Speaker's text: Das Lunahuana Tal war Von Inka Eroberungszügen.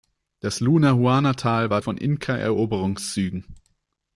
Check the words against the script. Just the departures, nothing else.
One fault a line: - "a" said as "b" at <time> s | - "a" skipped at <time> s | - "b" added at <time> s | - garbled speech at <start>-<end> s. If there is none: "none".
none